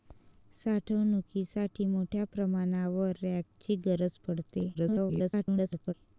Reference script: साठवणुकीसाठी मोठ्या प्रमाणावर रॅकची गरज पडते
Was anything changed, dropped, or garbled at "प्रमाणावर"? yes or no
no